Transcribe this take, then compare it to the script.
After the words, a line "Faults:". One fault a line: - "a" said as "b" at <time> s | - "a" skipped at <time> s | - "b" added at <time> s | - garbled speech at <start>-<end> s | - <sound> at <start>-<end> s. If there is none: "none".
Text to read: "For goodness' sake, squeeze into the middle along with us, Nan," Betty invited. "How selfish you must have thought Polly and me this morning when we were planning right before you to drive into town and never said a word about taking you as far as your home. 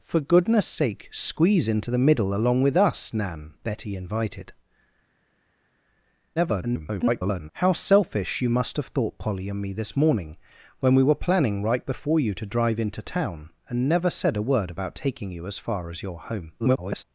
"For goodness' sake, squeeze into the middle along with us, Nan," Betty invited. [garbled] "How selfish you must have thought Polly and me this morning when we were planning right before you to drive into town and never said a word about taking you as far as your home. [garbled]
Faults:
- garbled speech at 6.4-7.5 s
- garbled speech at 16.6-17.0 s